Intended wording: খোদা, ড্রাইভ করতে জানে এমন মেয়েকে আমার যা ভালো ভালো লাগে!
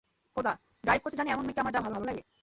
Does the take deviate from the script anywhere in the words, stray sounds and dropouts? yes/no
no